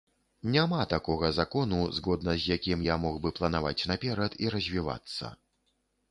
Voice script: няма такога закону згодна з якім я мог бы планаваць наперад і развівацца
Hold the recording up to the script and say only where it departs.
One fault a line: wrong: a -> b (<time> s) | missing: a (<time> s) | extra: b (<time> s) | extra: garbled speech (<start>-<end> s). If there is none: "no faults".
no faults